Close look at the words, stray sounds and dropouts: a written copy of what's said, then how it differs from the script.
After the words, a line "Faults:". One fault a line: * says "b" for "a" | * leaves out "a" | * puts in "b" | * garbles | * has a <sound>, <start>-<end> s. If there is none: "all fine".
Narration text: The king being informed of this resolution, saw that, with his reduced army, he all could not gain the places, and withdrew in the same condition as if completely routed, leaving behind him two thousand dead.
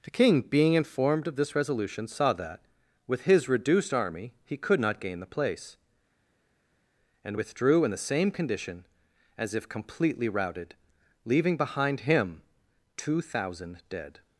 The king being informed of this resolution, saw that, with his reduced army, he could not gain the place, and withdrew in the same condition as if completely routed, leaving behind him two thousand dead.
Faults:
* leaves out "all"
* says "place" for "places"